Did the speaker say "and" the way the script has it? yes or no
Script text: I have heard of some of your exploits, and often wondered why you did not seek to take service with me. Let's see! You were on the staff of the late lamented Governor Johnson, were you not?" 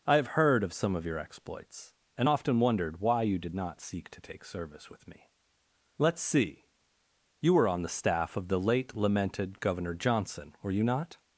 yes